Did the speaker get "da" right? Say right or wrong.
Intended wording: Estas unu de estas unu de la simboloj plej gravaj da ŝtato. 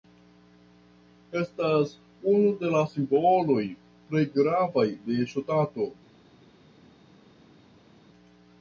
wrong